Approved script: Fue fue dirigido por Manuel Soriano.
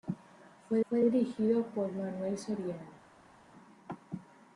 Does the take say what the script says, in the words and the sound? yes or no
yes